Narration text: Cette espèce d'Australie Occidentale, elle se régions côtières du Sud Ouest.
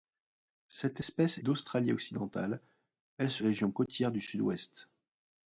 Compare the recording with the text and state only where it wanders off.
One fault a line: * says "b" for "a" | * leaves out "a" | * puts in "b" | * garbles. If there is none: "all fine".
all fine